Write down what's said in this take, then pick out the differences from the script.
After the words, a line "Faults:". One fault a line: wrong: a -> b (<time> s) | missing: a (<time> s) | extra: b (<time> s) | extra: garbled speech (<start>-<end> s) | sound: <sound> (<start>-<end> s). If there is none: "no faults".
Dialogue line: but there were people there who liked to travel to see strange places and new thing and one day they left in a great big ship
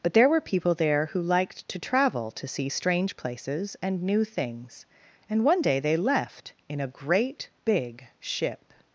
but there were people there who liked to travel to see strange places and new things and one day they left in a great big ship
Faults:
wrong: thing -> things (4.2 s)